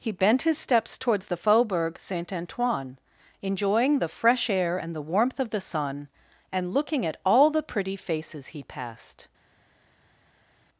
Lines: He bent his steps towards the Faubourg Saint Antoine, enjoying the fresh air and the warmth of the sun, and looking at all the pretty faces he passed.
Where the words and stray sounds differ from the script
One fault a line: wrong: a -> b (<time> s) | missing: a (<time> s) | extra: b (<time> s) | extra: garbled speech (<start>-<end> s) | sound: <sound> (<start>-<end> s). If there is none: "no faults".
no faults